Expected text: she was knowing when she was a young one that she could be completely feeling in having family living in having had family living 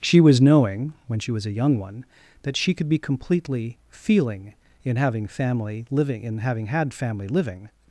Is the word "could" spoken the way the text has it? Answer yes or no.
yes